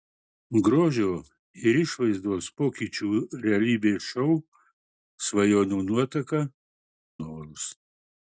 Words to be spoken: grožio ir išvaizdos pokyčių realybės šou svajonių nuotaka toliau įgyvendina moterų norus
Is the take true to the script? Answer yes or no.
no